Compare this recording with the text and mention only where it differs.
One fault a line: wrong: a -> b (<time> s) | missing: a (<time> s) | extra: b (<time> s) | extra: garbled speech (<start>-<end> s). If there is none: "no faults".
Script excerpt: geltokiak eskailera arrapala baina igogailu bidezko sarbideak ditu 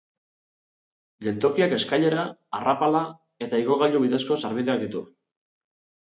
wrong: baina -> eta (3.5 s)